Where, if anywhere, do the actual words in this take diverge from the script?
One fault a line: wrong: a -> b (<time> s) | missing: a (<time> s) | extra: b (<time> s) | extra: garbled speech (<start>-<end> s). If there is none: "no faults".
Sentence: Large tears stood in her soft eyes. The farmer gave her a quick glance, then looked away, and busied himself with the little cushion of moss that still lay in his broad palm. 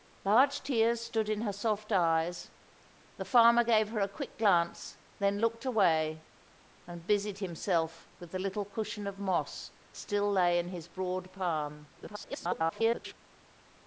missing: that (9.7 s)
extra: garbled speech (11.9-13.1 s)